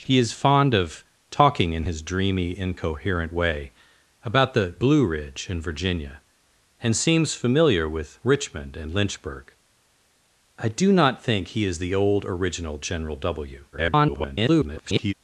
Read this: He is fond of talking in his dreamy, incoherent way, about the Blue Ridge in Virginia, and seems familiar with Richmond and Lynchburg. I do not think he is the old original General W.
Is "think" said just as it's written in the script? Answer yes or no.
yes